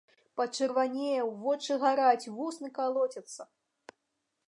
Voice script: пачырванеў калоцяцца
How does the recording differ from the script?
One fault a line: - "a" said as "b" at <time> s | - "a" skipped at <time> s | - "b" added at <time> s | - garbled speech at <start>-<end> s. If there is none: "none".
- "вочы гараць вусны" added at 1.4 s